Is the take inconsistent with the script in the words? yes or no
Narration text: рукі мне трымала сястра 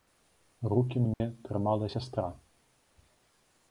no